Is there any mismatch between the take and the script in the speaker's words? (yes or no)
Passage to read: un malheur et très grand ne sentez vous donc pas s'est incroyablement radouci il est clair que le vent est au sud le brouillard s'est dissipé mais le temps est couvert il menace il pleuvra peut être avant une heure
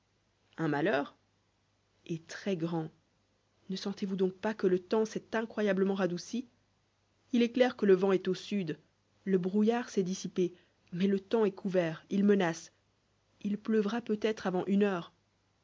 yes